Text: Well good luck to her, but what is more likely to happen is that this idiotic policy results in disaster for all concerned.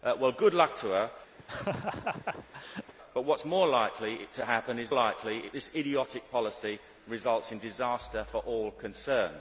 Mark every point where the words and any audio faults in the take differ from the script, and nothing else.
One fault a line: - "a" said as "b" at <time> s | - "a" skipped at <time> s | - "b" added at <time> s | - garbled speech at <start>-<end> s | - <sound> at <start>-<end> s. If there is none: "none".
- laugh at 1.4-2.9 s
- "that" said as "likely" at 4.9 s